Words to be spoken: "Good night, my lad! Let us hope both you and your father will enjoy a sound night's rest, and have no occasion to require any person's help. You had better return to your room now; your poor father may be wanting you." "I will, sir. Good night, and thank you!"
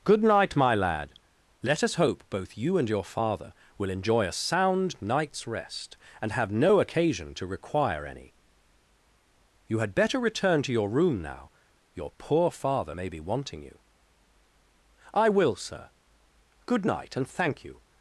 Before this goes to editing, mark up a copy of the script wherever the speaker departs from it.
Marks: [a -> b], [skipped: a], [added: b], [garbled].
"Good night, my lad! Let us hope both you and your father will enjoy a sound night's rest, and have no occasion to require any [skipped: person's help.] You had better return to your room now; your poor father may be wanting you." "I will, sir. Good night, and thank you!"